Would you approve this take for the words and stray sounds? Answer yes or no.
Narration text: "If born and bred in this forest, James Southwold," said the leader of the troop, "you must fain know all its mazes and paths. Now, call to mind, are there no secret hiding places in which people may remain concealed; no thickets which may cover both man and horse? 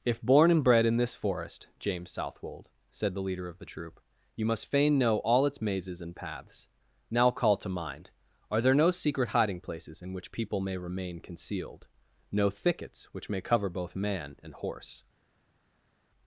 yes